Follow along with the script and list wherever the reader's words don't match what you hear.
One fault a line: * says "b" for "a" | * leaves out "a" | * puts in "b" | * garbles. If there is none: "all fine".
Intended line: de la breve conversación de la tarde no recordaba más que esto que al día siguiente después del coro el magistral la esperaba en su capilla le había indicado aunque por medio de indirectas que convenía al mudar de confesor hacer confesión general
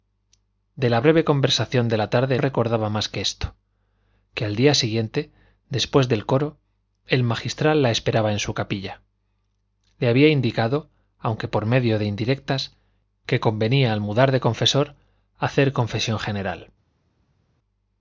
* leaves out "no"